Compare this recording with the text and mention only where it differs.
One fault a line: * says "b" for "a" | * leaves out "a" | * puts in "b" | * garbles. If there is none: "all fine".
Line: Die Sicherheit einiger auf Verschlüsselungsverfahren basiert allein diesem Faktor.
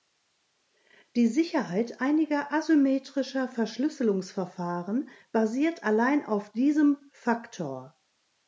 * says "asymmetrischer" for "auf"
* puts in "auf"